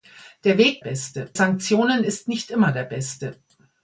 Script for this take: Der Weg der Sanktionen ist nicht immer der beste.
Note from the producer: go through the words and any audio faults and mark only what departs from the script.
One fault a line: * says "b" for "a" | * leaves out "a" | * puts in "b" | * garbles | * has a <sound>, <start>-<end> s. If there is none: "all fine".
* says "beste" for "der"